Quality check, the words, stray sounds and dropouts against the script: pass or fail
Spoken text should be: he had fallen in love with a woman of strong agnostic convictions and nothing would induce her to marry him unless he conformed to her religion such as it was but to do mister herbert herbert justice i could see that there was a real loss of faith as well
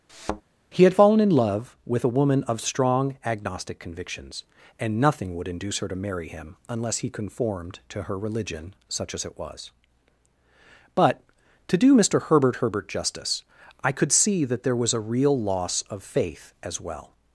fail